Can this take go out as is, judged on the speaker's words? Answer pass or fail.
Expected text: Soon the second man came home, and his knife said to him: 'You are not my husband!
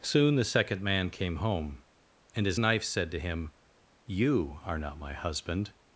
pass